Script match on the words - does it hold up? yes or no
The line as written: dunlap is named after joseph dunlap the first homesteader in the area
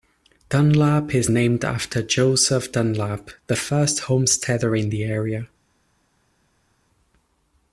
yes